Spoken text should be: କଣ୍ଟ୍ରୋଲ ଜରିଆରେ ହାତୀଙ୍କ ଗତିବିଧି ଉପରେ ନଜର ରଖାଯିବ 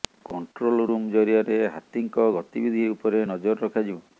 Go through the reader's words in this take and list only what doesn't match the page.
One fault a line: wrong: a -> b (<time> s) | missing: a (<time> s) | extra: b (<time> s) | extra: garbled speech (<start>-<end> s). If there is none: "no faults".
extra: ରୁମ୍ (0.8 s)